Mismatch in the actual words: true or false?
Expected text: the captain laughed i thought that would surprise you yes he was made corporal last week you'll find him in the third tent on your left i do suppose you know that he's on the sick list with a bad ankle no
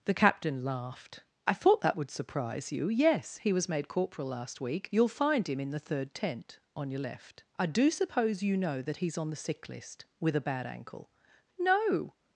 false